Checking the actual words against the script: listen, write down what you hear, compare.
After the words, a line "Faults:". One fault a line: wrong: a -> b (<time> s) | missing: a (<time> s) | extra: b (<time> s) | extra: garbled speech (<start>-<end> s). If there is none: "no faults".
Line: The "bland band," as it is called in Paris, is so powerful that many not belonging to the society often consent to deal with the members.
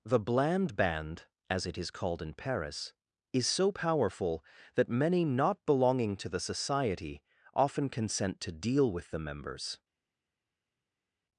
The "bland band," as it is called in Paris, is so powerful that many not belonging to the society often consent to deal with the members.
Faults:
no faults